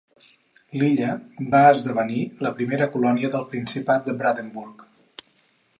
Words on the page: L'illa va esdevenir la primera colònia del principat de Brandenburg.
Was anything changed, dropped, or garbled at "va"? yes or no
no